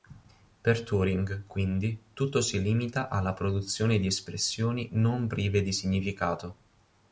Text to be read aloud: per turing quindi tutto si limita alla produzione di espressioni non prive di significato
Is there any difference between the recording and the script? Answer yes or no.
no